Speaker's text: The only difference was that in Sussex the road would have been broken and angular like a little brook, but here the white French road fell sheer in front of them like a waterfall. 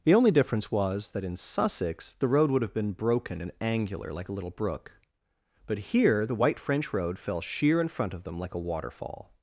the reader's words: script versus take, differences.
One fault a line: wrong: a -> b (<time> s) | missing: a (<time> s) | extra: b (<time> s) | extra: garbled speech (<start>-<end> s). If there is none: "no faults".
no faults